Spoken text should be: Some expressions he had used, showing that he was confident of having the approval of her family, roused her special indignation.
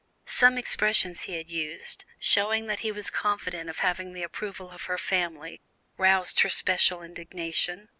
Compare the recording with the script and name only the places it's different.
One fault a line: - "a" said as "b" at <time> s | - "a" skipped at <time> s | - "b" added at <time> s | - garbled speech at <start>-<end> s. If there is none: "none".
none